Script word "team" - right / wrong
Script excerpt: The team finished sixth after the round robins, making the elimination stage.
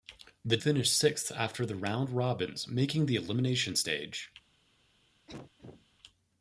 wrong